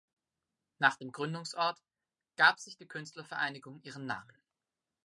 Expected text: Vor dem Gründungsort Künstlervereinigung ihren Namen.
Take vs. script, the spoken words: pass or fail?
fail